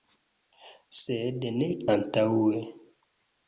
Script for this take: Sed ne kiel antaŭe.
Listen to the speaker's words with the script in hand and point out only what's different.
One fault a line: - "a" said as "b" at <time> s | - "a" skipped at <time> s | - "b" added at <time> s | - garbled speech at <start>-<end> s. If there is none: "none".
- "kiel" skipped at 1.7 s